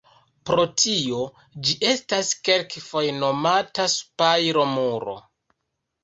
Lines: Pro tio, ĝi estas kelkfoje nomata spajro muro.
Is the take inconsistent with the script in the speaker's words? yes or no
no